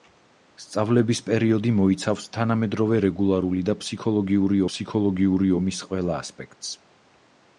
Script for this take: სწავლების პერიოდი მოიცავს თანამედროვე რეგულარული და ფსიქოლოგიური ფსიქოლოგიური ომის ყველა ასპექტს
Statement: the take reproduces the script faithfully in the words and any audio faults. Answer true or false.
true